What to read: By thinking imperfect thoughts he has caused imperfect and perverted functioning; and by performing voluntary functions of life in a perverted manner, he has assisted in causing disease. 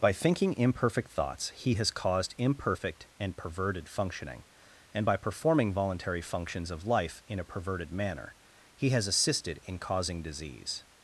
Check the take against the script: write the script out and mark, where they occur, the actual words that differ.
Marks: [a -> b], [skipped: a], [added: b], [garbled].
By thinking imperfect thoughts he has caused imperfect and perverted functioning; and by performing voluntary functions of life in a perverted manner, he has assisted in causing disease.